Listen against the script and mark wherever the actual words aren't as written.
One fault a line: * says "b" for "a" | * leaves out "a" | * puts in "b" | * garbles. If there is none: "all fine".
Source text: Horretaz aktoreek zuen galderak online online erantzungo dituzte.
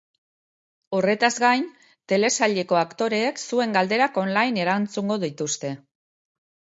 * puts in "gain telesaileko"
* leaves out "online"